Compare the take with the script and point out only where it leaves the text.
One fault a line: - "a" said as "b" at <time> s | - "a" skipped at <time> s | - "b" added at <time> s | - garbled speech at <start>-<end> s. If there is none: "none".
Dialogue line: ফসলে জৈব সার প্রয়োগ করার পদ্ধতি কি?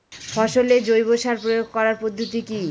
none